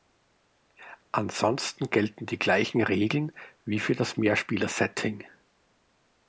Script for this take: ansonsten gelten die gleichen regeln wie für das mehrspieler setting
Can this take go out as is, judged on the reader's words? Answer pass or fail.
pass